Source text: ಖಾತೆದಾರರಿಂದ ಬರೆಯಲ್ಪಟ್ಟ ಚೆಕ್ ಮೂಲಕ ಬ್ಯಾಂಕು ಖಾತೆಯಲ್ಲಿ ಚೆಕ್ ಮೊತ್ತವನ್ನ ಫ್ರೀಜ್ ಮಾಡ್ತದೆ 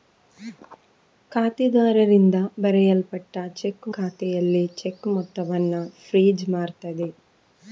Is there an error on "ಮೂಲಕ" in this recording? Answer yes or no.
yes